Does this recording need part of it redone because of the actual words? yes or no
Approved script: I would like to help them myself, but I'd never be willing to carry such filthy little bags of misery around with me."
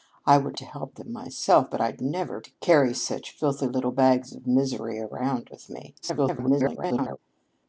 yes